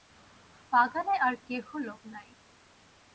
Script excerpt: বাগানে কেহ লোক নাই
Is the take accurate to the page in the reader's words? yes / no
no